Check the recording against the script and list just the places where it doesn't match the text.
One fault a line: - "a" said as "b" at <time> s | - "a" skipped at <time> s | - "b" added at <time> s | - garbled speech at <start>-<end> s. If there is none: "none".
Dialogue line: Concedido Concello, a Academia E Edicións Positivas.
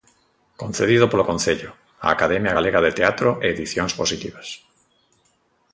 - "polo" added at 1.1 s
- "Galega de Teatro" added at 2.6 s